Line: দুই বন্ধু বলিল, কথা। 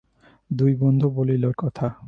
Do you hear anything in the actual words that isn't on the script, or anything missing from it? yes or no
no